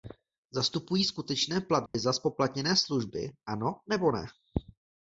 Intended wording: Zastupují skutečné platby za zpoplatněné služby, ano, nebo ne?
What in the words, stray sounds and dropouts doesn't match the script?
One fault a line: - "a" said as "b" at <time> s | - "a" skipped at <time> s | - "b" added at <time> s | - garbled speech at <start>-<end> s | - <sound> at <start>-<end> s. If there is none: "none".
- dropout at 1.9-1.9 s